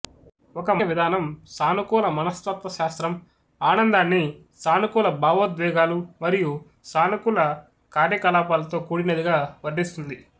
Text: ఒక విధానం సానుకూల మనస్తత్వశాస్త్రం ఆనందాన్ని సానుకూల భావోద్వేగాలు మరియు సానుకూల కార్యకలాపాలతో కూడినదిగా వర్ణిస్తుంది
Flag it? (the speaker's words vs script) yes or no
no